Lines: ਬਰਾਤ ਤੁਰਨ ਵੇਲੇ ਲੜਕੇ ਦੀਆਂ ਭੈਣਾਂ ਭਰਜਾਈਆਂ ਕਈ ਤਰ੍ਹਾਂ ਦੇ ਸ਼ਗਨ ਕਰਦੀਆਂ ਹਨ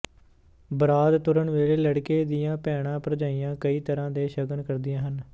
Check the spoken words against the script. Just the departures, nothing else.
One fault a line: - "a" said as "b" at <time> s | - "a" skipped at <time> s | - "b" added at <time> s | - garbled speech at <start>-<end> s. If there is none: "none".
none